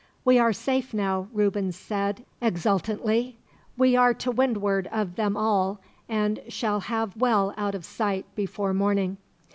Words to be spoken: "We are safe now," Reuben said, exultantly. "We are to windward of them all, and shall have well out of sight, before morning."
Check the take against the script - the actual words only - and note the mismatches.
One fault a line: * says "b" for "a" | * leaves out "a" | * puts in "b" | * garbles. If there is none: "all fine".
all fine